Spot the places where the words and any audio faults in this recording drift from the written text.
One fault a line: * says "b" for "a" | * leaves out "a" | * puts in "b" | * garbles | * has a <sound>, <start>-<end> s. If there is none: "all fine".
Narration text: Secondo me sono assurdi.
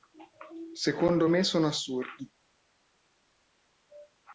all fine